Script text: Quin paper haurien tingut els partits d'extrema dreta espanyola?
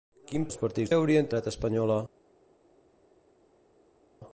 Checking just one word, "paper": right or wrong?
wrong